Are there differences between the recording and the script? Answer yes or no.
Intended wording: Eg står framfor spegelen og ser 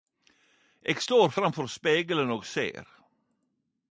no